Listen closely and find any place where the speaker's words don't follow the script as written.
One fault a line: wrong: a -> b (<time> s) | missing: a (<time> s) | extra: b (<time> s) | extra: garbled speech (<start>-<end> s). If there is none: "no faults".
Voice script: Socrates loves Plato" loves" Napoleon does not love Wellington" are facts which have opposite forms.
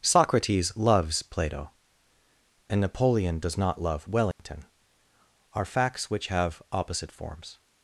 wrong: loves -> and (2.7 s)